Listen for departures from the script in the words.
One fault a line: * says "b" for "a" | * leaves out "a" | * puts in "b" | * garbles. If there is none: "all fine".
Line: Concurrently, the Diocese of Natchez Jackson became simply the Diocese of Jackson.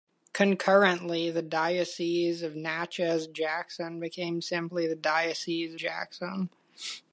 * leaves out "of"